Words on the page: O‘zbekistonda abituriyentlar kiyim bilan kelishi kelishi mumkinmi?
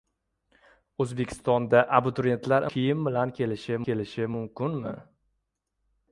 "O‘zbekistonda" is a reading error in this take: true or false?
false